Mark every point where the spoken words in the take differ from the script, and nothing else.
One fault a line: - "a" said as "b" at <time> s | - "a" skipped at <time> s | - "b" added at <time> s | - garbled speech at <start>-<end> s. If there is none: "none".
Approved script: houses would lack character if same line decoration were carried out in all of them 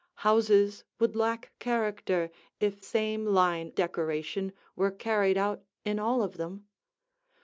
none